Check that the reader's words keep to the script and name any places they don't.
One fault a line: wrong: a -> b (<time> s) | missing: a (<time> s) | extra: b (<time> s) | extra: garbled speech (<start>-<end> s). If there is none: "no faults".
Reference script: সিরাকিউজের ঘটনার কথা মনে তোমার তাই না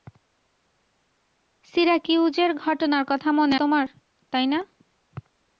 no faults